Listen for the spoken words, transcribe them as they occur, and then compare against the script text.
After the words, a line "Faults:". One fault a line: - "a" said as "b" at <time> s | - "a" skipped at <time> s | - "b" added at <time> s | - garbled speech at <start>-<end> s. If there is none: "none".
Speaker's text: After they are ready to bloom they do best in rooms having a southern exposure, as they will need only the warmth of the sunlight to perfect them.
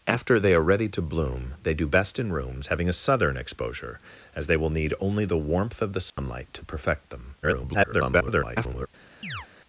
After they are ready to bloom they do best in rooms having a southern exposure, as they will need only the warmth of the sunlight to perfect them. [garbled]
Faults:
- garbled speech at 7.4-8.9 s